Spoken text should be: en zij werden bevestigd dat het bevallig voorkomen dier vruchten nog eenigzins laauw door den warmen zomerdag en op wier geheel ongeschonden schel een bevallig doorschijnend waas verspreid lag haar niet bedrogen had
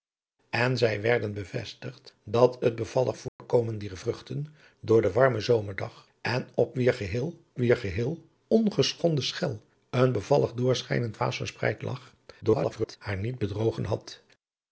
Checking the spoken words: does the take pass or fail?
fail